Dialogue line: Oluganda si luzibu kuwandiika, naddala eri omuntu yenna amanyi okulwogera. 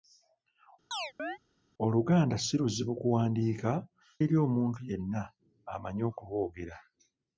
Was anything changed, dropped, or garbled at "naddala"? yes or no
yes